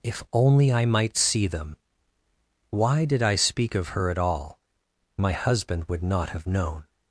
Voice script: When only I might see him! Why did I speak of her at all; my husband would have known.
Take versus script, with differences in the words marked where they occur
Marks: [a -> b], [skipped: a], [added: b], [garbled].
[When -> If] only I might see [him! -> them] Why did I speak of her at all; my husband would [added: not] have known.